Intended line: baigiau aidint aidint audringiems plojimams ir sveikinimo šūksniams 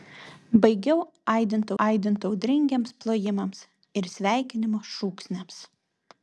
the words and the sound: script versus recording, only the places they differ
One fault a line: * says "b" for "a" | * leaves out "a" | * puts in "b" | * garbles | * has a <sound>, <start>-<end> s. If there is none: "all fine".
all fine